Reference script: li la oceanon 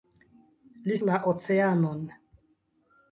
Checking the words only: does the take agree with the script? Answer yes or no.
yes